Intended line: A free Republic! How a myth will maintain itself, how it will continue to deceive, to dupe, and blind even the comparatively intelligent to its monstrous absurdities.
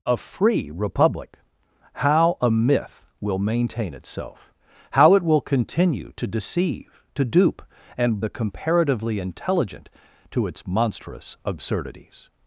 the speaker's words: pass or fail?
fail